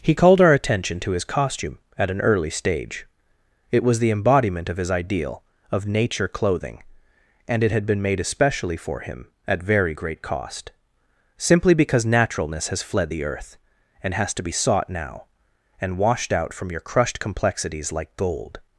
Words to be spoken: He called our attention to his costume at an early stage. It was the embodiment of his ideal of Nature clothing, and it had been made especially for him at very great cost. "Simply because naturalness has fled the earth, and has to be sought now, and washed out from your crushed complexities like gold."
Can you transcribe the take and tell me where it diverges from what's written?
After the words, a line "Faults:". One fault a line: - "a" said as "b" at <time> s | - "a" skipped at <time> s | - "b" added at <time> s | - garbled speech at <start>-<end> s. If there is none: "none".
He called our attention to his costume at an early stage. It was the embodiment of his ideal of Nature clothing, and it had been made especially for him at very great cost. "Simply because naturalness has fled the earth, and has to be sought now, and washed out from your crushed complexities like gold."
Faults:
none